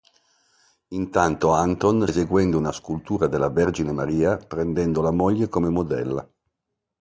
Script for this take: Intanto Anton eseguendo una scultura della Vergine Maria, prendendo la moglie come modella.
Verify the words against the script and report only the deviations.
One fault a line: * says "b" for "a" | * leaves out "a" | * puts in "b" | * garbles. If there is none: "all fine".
all fine